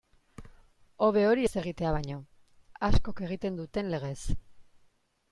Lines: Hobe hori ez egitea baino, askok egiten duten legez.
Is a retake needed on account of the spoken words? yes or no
no